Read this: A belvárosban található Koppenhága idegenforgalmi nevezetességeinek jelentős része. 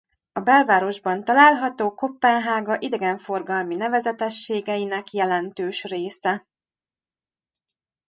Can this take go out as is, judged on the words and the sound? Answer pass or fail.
pass